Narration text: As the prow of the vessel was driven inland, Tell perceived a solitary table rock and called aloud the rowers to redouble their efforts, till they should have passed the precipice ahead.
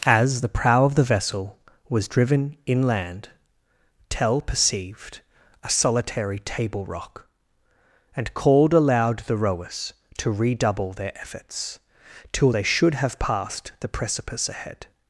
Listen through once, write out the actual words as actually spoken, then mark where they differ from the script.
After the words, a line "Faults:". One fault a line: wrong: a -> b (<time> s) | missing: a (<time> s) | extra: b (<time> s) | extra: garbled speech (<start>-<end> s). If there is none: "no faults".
As the prow of the vessel was driven inland, Tell perceived a solitary table rock and called aloud the rowers to redouble their efforts, till they should have passed the precipice ahead.
Faults:
no faults